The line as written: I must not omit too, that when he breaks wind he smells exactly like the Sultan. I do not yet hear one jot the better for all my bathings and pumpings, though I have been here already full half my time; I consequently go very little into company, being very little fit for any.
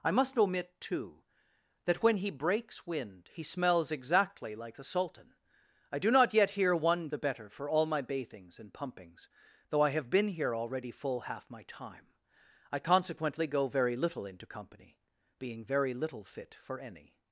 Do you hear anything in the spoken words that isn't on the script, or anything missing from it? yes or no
yes